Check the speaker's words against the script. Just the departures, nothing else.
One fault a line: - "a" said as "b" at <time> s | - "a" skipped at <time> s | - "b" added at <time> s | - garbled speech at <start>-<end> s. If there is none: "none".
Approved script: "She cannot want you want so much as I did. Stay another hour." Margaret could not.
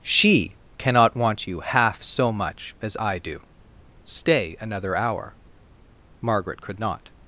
- "want" said as "half" at 1.6 s
- "did" said as "do" at 3.2 s